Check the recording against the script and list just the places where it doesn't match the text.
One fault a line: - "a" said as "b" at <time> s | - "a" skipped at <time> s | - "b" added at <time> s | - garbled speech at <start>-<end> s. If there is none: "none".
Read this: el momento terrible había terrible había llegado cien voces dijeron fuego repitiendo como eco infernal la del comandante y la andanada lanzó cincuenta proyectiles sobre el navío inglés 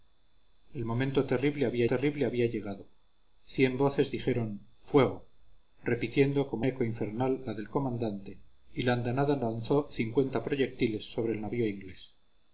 none